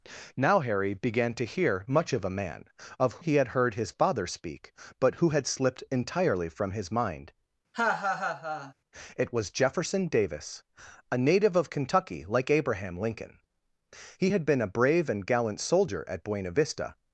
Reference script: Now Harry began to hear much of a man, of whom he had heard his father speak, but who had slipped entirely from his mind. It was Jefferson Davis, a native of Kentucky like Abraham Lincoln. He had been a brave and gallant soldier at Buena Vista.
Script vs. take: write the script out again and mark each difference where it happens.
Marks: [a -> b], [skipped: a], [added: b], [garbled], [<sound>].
Now Harry began to hear much of a man, of [skipped: whom] he had heard his father speak, but who had slipped entirely from his mind. [laugh] It was Jefferson Davis, a native of Kentucky like Abraham Lincoln. He had been a brave and gallant soldier at Buena Vista.